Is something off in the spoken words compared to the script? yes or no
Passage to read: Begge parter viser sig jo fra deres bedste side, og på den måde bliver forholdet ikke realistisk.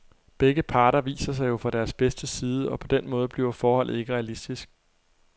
no